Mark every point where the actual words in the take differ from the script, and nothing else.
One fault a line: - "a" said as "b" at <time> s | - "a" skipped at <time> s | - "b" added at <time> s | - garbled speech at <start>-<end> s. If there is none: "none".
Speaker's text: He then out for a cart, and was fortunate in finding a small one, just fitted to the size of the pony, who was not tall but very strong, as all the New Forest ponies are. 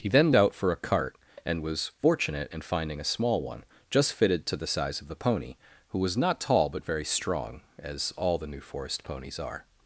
none